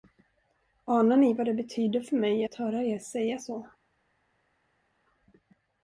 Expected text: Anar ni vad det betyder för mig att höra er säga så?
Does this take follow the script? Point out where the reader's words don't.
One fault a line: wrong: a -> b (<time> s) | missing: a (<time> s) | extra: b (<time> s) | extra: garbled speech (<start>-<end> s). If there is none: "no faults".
no faults